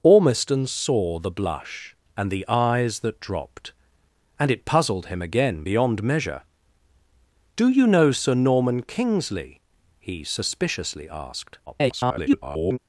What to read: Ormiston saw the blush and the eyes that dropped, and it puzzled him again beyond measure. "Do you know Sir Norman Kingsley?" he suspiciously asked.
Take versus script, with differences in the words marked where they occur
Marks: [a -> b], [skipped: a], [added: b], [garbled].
Ormiston saw the blush and the eyes that dropped, and it puzzled him again beyond measure. "Do you know Sir Norman Kingsley?" he suspiciously asked. [garbled]